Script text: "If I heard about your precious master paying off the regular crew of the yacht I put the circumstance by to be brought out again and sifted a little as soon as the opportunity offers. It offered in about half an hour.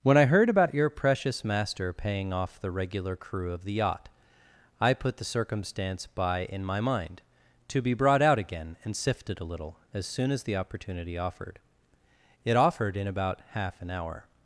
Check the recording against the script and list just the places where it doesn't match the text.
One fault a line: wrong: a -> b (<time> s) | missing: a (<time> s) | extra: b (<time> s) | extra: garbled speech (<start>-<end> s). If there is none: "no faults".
wrong: If -> When (0.0 s)
extra: in my mind (6.5 s)
wrong: offers -> offered (11.2 s)